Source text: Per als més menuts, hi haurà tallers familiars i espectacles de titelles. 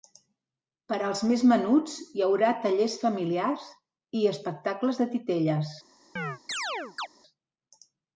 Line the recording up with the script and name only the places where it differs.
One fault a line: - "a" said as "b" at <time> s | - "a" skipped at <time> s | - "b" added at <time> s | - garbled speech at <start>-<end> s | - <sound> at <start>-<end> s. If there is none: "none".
- chirp at 6.2-7.1 s